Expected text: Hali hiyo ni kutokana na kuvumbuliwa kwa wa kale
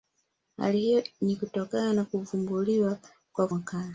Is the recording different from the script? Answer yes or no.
no